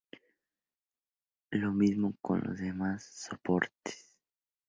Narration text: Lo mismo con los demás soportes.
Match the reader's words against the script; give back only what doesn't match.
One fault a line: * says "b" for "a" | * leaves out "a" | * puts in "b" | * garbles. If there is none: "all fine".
all fine